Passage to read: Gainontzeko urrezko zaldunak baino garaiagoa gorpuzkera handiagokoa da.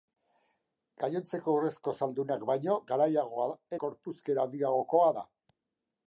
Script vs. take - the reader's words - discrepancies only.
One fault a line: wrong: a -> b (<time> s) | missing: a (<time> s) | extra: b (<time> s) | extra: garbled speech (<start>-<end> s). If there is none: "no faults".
no faults